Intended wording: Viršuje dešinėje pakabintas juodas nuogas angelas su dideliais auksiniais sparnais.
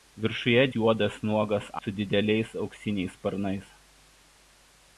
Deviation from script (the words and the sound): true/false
true